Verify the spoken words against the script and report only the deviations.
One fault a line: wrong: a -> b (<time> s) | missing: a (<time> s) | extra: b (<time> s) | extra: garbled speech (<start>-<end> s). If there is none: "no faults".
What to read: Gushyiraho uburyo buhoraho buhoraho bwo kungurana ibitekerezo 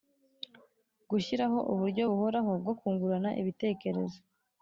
missing: buhoraho (2.5 s)